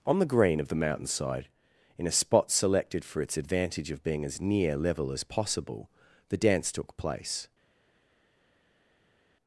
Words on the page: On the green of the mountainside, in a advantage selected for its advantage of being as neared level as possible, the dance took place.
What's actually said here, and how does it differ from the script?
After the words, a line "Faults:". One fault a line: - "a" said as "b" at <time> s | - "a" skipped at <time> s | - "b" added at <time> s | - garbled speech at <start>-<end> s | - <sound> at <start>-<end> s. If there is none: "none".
On the green of the mountainside, in a spot selected for its advantage of being as near level as possible, the dance took place.
Faults:
- "advantage" said as "spot" at 2.1 s
- "neared" said as "near" at 4.4 s